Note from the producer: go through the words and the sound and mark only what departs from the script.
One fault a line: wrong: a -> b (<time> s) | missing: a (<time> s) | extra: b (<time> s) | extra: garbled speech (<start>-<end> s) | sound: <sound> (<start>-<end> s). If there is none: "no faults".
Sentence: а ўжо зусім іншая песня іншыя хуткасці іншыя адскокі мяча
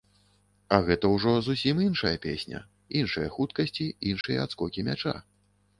extra: гэта (0.9 s)
sound: dropout (4.2-4.2 s)